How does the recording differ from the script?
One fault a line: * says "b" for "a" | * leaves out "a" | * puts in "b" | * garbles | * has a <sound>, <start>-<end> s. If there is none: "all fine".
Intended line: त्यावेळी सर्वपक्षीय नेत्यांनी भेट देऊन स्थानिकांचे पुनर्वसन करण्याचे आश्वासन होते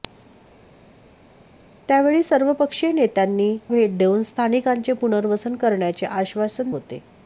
all fine